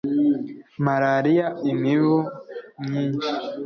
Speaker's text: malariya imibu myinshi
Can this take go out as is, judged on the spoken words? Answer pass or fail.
pass